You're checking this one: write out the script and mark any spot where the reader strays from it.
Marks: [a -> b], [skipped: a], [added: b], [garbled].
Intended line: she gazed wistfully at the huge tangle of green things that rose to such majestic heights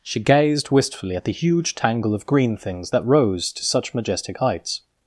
she gazed wistfully at the huge tangle of green things that rose to such majestic heights